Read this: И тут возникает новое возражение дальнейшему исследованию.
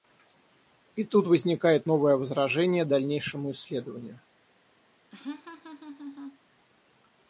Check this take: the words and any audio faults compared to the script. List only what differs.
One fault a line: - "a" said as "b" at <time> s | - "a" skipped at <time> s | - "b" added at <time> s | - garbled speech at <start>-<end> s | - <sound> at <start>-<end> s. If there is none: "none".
- laugh at 5.1-6.4 s